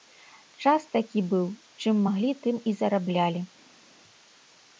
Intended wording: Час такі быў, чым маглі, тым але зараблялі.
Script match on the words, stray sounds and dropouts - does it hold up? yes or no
no